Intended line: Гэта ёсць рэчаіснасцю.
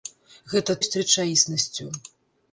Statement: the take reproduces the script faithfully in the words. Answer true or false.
true